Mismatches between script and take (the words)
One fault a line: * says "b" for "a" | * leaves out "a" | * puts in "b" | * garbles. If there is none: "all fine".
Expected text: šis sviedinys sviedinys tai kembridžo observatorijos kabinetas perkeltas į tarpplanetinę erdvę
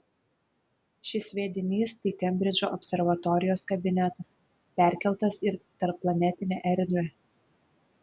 * leaves out "sviedinys"